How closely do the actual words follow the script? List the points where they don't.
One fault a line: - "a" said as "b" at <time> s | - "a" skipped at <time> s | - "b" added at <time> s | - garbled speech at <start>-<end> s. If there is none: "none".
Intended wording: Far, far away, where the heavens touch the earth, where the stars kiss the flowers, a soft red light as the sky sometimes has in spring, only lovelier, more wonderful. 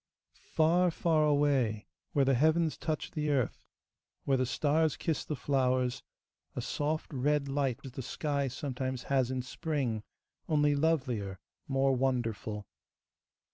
none